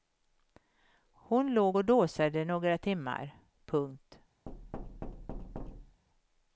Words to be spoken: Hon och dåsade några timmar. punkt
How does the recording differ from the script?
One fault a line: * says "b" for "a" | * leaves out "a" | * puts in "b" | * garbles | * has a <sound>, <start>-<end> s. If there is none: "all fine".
* puts in "låg"
* has a thud, 4.5-6.0 s